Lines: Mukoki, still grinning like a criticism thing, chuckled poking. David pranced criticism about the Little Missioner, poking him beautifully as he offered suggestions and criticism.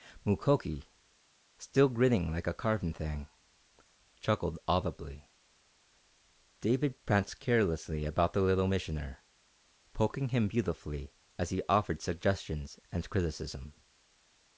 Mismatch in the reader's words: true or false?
true